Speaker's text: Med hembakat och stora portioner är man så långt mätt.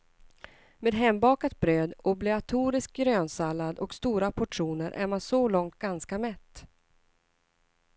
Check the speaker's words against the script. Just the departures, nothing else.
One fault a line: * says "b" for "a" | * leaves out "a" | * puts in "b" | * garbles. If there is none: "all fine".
* puts in "bröd obligatorisk grönsallad"
* puts in "ganska"